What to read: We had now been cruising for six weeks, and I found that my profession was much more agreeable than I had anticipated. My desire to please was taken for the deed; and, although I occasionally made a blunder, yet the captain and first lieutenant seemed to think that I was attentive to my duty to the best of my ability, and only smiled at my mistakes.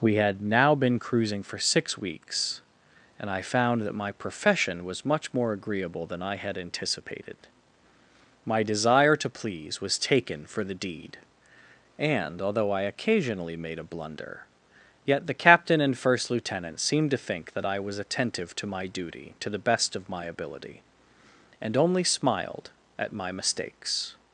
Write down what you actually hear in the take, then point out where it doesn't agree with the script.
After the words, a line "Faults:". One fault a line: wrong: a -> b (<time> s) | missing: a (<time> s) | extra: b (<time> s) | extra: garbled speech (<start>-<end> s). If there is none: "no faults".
We had now been cruising for six weeks, and I found that my profession was much more agreeable than I had anticipated. My desire to please was taken for the deed; and, although I occasionally made a blunder, yet the captain and first lieutenant seemed to think that I was attentive to my duty to the best of my ability, and only smiled at my mistakes.
Faults:
no faults